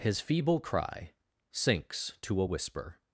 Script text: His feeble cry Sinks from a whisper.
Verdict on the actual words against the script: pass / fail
fail